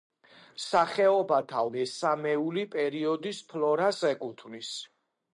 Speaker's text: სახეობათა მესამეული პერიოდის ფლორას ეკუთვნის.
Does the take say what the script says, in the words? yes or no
yes